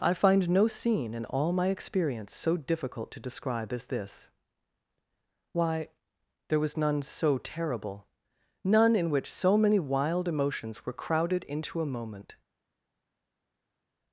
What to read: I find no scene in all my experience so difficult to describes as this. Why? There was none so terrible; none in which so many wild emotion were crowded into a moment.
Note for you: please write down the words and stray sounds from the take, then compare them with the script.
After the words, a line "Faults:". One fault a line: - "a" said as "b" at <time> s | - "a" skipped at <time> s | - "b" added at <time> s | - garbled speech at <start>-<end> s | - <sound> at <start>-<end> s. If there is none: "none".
I find no scene in all my experience so difficult to describe as this. Why? There was none so terrible; none in which so many wild emotions were crowded into a moment.
Faults:
- "describes" said as "describe" at 3.2 s
- "emotion" said as "emotions" at 10.3 s